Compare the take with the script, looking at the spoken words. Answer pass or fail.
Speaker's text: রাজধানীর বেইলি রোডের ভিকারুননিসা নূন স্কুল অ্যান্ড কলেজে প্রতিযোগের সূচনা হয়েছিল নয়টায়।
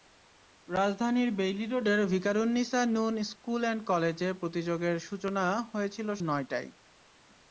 pass